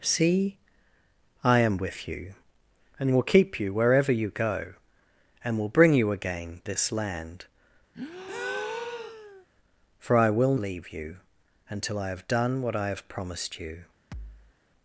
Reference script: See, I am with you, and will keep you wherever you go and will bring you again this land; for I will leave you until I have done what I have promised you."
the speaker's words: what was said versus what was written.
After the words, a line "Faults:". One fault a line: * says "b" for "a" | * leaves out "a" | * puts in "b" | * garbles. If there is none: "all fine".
See, I am with you, and will keep you wherever you go and will bring you again this land; for I will leave you until I have done what I have promised you."
Faults:
all fine